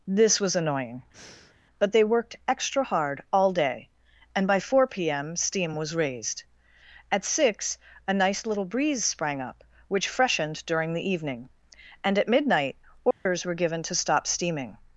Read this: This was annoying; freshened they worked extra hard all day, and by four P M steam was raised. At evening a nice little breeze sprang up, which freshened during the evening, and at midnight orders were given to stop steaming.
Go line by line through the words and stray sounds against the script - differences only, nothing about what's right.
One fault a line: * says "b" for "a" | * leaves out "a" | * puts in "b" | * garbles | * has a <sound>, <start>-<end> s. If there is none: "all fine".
* has a breath, 1.1-1.6 s
* says "but" for "freshened"
* says "six" for "evening"
* has a dropout, 13.1-13.3 s